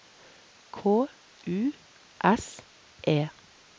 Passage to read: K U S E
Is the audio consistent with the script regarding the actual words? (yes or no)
yes